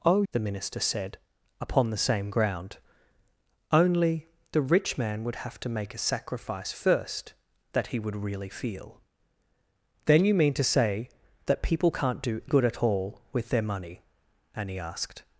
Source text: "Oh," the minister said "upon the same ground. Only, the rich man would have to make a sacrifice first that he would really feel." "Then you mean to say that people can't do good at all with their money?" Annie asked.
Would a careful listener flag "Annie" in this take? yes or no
no